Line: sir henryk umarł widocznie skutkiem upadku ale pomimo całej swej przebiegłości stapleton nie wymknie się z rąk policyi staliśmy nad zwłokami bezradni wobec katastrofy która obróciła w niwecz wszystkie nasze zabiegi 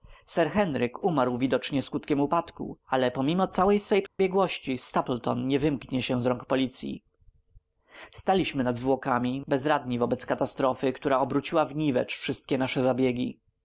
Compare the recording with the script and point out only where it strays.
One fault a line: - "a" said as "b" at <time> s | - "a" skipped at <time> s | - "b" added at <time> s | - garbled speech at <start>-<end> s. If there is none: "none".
none